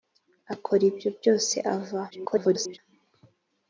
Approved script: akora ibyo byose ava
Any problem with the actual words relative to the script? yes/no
yes